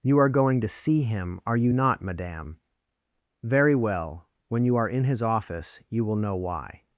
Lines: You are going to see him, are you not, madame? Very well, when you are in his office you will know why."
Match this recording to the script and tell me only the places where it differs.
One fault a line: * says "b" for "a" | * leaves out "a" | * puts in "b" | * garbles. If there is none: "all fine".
all fine